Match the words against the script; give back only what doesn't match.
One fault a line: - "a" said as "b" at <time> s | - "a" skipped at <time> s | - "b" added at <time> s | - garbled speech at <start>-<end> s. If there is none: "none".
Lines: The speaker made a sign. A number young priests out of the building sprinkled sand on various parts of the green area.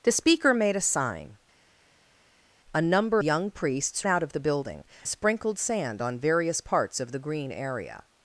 none